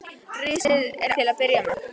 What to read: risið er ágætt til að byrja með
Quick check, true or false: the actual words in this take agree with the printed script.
false